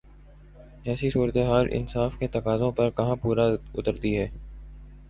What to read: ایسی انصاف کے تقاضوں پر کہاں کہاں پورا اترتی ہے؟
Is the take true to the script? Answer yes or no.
no